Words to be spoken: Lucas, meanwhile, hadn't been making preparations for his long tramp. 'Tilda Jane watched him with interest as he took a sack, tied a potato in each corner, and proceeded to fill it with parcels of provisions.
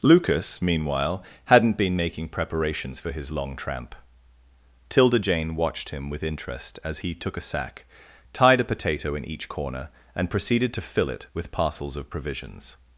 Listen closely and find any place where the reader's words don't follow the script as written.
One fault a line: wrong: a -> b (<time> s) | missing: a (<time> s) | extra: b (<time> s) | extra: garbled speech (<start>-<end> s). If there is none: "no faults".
no faults